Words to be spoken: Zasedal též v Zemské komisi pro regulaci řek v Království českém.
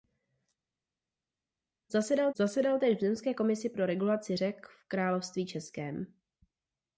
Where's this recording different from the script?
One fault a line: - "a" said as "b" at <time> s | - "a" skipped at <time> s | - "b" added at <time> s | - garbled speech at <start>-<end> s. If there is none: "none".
- "zasedal" added at 2.4 s